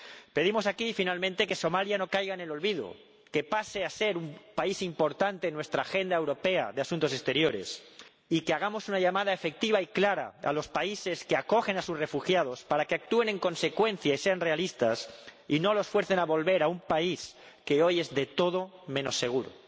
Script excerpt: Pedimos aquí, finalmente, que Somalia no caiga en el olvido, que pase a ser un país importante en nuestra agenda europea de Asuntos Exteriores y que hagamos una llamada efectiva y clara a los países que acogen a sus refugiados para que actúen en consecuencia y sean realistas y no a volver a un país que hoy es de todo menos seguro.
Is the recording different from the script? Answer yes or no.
yes